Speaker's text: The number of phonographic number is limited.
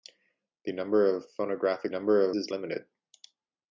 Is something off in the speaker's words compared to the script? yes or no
no